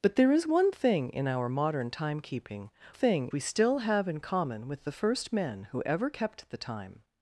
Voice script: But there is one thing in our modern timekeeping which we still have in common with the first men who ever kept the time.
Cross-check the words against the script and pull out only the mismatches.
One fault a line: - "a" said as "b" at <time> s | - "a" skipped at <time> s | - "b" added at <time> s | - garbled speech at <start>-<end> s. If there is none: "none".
- "which" said as "thing" at 2.9 s